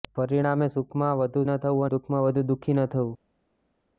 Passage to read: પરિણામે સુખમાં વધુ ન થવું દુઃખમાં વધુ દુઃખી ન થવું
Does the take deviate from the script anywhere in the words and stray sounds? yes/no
no